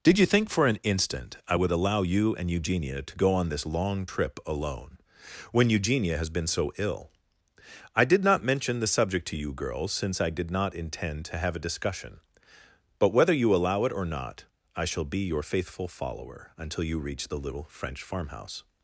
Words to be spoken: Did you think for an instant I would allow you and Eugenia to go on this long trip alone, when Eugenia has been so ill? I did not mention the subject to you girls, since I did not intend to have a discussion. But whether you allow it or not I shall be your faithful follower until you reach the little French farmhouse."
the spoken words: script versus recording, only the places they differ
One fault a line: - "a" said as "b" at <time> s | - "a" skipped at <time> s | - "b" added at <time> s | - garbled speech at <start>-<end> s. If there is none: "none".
none